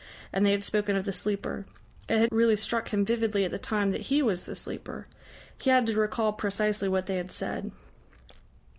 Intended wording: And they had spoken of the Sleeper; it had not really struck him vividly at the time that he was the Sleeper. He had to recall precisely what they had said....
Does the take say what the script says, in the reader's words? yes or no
no